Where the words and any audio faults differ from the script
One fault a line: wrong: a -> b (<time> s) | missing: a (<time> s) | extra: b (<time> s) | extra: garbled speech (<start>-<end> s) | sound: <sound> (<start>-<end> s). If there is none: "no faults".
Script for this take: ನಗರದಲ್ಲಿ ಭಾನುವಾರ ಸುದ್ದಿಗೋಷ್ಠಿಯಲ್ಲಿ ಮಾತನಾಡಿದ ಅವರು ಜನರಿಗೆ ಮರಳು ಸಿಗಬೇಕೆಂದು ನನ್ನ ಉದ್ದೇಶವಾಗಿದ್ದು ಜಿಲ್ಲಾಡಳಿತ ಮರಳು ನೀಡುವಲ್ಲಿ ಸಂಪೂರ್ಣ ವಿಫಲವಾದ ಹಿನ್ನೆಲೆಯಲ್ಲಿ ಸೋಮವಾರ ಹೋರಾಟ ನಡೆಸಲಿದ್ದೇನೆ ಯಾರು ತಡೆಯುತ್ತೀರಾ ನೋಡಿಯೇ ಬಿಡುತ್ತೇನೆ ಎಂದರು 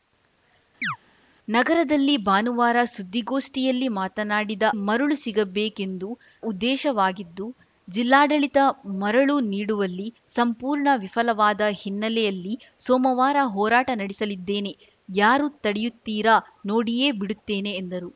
sound: chirp (0.8-1.0 s)
missing: ಅವರು ಜನರಿಗೆ (4.6 s)
missing: ನನ್ನ (6.1 s)